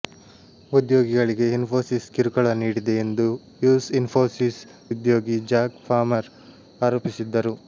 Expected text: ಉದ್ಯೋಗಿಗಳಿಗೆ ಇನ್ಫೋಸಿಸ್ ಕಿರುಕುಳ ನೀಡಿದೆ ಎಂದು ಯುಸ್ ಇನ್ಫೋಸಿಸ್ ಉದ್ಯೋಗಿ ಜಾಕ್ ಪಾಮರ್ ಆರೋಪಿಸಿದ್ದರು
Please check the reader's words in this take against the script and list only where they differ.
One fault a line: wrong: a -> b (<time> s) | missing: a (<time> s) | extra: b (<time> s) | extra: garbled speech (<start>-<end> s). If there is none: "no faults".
no faults